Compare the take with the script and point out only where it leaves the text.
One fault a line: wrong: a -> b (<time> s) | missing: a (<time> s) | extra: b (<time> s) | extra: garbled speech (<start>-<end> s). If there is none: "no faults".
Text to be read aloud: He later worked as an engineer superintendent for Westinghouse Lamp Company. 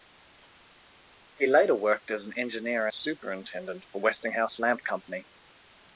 no faults